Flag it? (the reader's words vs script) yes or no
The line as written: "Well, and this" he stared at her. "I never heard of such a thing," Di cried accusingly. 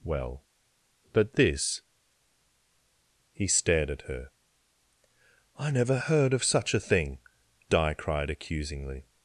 yes